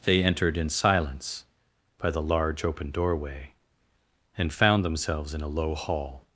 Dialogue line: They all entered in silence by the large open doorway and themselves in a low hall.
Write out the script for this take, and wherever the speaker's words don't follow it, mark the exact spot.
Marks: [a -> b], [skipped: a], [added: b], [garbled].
They [skipped: all] entered in silence by the large open doorway and [added: found] themselves in a low hall.